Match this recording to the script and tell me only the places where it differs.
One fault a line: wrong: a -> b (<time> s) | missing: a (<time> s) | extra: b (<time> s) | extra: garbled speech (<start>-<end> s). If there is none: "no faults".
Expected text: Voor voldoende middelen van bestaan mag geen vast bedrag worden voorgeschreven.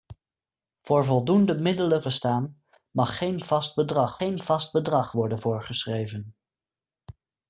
missing: van (2.0 s)
extra: geen vast bedrag (4.2 s)